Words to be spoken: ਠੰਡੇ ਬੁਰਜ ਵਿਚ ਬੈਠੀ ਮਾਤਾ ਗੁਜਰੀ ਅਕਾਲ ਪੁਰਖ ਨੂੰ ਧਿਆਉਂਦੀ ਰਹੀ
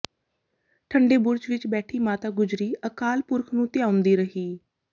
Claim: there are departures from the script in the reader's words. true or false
false